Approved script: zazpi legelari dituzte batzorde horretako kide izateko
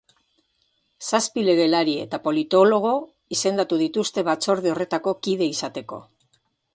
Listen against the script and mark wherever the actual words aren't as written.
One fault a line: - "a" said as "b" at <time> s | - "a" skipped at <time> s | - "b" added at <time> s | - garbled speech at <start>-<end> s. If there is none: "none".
- "eta politologo izendatu" added at 2.0 s